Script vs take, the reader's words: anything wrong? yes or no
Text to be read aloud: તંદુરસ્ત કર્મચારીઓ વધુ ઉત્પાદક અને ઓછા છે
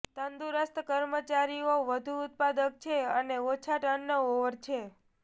yes